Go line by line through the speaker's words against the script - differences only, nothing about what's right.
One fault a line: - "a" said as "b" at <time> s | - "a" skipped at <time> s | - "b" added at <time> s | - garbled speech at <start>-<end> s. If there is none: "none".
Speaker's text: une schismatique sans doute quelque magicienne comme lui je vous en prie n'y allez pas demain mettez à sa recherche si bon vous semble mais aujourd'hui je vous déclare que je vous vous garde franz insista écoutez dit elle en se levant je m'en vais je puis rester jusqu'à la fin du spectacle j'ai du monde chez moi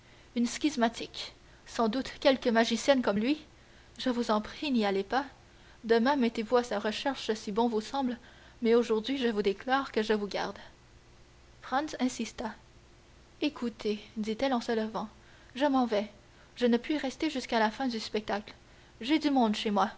- "vous" added at 6.4 s
- "vous" skipped at 10.3 s
- "ne" added at 16.6 s